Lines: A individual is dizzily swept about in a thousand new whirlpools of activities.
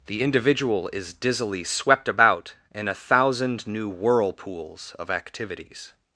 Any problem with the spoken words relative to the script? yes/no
yes